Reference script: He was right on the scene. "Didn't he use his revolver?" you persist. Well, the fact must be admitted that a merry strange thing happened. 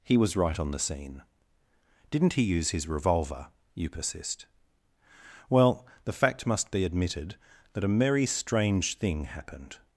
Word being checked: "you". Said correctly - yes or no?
yes